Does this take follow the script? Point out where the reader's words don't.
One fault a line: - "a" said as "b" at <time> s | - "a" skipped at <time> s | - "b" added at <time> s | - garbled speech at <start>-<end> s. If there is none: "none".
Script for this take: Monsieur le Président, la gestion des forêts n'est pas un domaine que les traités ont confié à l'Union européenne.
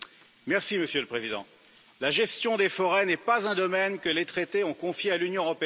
none